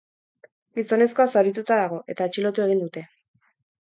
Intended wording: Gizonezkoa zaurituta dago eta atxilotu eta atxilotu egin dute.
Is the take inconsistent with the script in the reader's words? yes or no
yes